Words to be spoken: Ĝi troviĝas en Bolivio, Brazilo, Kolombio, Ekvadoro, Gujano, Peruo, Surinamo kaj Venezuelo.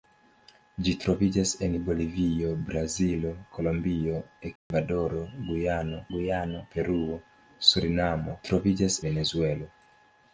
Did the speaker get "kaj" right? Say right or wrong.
wrong